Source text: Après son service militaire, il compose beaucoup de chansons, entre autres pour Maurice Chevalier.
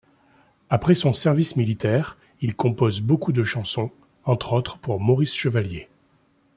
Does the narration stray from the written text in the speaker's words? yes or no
no